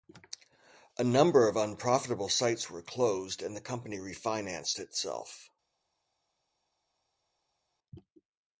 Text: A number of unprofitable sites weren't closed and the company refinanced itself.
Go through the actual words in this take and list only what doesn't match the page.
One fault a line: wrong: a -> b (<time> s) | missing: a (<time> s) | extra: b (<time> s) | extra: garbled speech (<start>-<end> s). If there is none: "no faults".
wrong: weren't -> were (2.7 s)